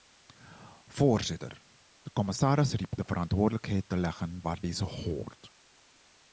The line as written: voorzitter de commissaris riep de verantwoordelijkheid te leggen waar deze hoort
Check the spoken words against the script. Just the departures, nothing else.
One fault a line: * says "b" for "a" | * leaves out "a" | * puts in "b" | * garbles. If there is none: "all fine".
all fine